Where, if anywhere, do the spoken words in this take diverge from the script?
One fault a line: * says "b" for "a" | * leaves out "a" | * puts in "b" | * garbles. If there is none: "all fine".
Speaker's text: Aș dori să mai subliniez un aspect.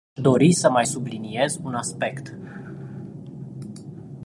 all fine